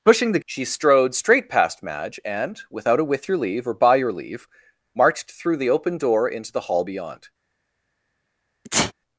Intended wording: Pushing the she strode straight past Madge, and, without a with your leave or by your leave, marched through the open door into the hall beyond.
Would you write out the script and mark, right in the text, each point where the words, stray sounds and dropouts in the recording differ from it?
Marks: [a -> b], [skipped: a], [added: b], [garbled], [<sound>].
Pushing the she strode straight past Madge, and, without a with your leave or by your leave, marched through the open door into the hall beyond. [sneeze]